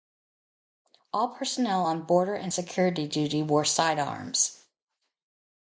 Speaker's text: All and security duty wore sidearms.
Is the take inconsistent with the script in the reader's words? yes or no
yes